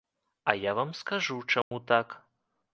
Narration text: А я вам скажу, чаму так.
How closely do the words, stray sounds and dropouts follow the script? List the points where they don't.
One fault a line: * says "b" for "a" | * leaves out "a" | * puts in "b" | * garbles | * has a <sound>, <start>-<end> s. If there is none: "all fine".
* has a dropout, 1.6-1.7 s